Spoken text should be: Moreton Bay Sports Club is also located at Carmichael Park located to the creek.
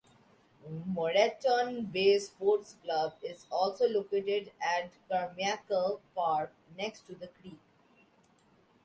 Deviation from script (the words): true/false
true